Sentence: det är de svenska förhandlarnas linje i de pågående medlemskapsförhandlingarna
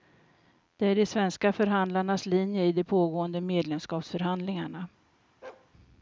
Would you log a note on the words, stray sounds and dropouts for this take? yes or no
yes